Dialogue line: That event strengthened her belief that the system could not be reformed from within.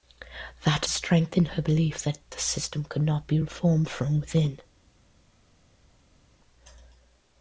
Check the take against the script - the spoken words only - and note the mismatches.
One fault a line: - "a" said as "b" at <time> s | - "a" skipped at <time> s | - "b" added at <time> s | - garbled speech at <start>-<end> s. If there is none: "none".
- "event" skipped at 0.9 s